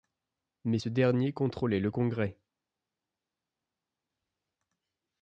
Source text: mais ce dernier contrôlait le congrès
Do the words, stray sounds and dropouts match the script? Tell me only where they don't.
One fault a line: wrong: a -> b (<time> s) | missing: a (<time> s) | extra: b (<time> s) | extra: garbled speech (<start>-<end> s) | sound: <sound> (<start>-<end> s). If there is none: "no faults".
no faults